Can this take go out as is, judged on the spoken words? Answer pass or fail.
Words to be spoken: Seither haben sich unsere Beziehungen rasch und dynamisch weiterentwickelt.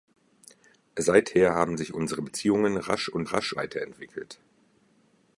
fail